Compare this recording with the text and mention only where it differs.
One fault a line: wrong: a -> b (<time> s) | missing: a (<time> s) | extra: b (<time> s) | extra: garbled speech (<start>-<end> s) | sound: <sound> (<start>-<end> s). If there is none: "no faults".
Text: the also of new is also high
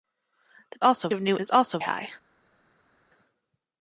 no faults